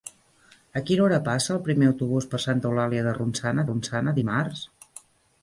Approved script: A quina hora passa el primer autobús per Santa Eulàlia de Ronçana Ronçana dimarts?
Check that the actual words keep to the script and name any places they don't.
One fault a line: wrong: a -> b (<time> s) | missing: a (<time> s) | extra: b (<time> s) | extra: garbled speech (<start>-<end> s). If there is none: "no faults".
no faults